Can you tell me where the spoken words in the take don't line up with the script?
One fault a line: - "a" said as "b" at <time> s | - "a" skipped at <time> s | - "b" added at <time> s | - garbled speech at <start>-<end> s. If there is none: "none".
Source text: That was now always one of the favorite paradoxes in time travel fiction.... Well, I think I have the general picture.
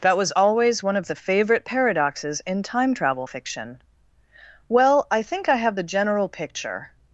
- "now" skipped at 0.3 s